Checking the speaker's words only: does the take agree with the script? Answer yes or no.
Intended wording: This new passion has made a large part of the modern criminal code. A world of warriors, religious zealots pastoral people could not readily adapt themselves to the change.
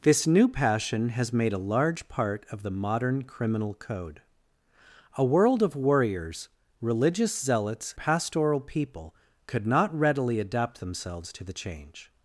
yes